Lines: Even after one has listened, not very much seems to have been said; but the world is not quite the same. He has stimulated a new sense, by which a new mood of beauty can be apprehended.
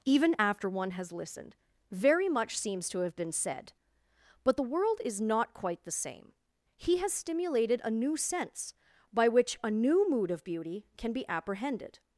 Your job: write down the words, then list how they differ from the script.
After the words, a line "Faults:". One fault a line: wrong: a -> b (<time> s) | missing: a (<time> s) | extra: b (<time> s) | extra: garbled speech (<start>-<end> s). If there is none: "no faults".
Even after one has listened, very much seems to have been said; but the world is not quite the same. He has stimulated a new sense, by which a new mood of beauty can be apprehended.
Faults:
missing: not (1.5 s)